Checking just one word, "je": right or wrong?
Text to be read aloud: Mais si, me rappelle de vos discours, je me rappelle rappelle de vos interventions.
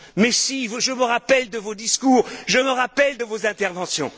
right